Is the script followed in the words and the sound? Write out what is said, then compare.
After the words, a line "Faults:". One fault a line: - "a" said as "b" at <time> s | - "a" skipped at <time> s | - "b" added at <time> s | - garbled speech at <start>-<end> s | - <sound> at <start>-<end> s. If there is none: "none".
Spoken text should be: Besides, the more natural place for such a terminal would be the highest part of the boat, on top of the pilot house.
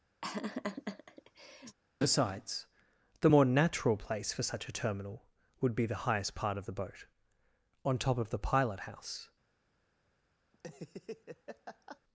Besides, the more natural place for such a terminal would be the highest part of the boat, on top of the pilot house.
Faults:
- laugh at 0.2-1.8 s
- laugh at 10.5-12.0 s